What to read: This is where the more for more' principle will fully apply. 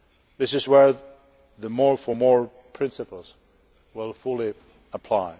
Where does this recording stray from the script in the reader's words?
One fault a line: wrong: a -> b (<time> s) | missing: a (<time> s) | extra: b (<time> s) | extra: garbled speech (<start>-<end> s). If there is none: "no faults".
no faults